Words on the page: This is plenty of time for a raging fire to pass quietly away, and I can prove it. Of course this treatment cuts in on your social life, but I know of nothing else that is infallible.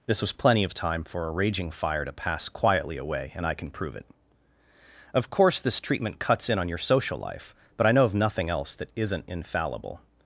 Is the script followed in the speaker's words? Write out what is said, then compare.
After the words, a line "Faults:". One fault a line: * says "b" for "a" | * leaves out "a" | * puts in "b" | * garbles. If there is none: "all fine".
This was plenty of time for a raging fire to pass quietly away, and I can prove it. Of course this treatment cuts in on your social life, but I know of nothing else that isn't infallible.
Faults:
* says "was" for "is"
* says "isn't" for "is"